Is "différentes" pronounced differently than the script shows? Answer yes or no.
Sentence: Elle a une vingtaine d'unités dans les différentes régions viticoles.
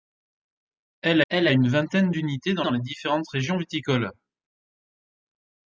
no